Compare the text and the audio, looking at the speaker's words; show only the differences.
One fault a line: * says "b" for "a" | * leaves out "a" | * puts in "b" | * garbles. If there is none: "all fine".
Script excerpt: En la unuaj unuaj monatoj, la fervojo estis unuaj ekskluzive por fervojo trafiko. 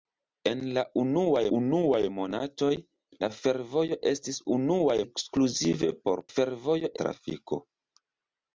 all fine